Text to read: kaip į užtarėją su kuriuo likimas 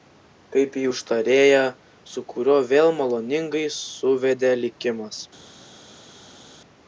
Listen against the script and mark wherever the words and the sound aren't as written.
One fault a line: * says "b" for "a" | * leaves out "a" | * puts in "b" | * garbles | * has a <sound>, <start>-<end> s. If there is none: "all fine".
* puts in "vėl maloningai suvedė"